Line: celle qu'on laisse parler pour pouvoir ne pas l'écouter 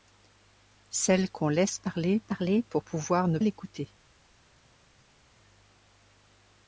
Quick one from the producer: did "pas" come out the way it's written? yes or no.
no